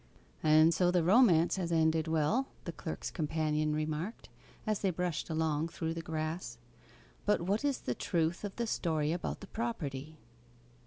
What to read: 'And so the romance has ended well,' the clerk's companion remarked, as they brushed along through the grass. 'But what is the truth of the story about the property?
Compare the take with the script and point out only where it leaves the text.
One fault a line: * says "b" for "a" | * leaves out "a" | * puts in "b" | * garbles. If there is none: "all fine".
all fine